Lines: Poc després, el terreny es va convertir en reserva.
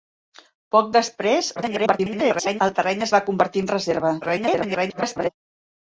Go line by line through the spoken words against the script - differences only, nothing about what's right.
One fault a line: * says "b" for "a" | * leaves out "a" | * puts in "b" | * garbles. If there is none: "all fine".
* garbles
* garbles